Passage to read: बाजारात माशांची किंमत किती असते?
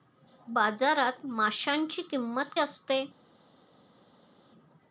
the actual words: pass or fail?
fail